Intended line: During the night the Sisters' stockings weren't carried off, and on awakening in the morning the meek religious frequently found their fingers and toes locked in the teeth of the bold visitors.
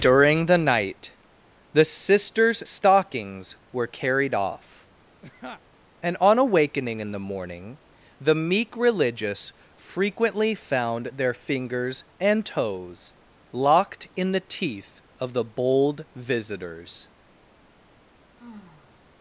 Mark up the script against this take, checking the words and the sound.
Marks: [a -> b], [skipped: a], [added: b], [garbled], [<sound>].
During the night the Sisters' stockings [weren't -> were] carried off, [laugh] and on awakening in the morning the meek religious frequently found their fingers and toes locked in the teeth of the bold visitors. [sigh]